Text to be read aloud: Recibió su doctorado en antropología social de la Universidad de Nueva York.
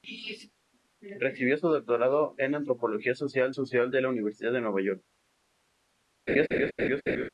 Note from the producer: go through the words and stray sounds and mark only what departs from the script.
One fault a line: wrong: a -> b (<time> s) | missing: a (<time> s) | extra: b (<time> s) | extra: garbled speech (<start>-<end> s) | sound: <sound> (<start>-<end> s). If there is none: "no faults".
extra: social (3.5 s)
sound: laugh (6.3-7.3 s)